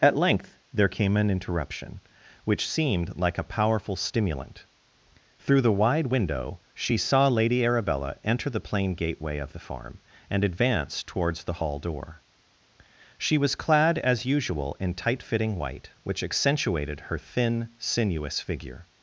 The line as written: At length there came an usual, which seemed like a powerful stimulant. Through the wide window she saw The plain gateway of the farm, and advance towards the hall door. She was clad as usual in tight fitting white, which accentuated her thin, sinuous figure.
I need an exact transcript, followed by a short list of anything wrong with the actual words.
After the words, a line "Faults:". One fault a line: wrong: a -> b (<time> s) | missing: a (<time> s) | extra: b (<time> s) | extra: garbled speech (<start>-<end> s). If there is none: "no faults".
At length there came an interruption, which seemed like a powerful stimulant. Through the wide window she saw Lady Arabella enter the plain gateway of the farm, and advance towards the hall door. She was clad as usual in tight fitting white, which accentuated her thin, sinuous figure.
Faults:
wrong: usual -> interruption (1.3 s)
extra: Lady Arabella enter (7.3 s)